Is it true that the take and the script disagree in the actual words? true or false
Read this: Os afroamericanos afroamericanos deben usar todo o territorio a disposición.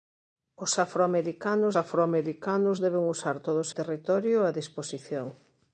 false